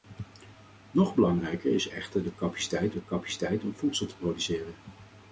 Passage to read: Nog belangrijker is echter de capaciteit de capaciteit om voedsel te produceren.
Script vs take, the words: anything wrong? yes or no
no